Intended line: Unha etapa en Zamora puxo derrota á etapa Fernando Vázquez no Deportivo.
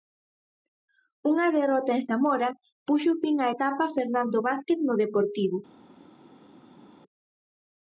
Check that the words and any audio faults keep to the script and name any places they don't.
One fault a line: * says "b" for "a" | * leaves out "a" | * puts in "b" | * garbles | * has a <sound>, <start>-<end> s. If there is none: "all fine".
* says "derrota" for "etapa"
* says "fin" for "derrota"